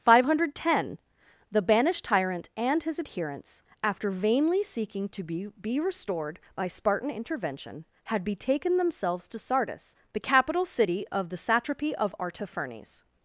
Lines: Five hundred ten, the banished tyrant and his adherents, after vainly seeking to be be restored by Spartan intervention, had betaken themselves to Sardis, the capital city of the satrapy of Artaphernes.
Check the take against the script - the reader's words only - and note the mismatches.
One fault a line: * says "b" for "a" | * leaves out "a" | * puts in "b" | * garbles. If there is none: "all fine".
all fine